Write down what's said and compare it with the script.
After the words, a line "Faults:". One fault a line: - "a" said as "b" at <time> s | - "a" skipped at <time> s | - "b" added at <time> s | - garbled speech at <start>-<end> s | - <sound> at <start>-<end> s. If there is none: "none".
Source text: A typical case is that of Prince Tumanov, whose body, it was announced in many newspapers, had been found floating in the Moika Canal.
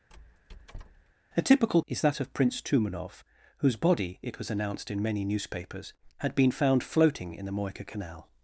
A typical is that of Prince Tumanov, whose body, it was announced in many newspapers, had been found floating in the Moika Canal.
Faults:
- squeak at 0.1-1.1 s
- "case" skipped at 1.8 s